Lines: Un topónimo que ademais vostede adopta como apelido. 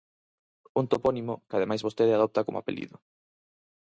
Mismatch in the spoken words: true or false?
false